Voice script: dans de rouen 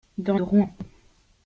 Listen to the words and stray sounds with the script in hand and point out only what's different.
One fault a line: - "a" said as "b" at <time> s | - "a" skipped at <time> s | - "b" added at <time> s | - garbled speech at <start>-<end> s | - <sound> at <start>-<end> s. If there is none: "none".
none